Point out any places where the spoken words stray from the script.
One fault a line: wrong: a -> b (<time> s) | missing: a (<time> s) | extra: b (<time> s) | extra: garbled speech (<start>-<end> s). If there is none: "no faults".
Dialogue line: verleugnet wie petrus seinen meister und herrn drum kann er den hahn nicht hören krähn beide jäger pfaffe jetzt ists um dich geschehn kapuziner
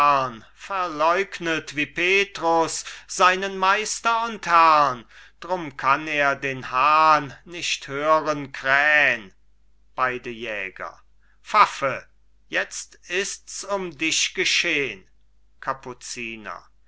no faults